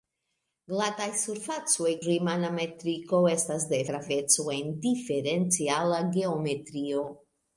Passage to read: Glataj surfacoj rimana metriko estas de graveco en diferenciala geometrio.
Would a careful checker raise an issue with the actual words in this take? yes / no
no